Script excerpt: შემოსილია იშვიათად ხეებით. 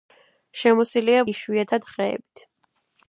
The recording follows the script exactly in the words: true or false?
true